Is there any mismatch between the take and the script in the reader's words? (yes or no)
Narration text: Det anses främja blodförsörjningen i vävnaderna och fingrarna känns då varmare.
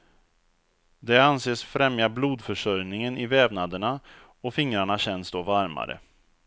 no